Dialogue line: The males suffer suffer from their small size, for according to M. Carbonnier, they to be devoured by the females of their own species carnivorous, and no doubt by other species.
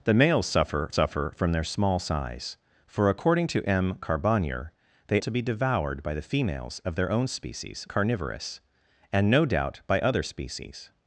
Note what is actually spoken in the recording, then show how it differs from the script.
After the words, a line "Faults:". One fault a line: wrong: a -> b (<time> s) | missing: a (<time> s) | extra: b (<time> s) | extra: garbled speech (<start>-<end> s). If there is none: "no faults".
The males suffer suffer from their small size, for according to M. Carbonnier, they to be devoured by the females of their own species carnivorous, and no doubt by other species.
Faults:
no faults